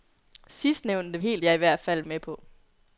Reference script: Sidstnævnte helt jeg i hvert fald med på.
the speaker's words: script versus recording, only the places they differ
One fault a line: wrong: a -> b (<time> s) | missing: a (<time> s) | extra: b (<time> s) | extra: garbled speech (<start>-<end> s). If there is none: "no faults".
no faults